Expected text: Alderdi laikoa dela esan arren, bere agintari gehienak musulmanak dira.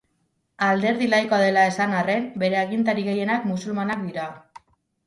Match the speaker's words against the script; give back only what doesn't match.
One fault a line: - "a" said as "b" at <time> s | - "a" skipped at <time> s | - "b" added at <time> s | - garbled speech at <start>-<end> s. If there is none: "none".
none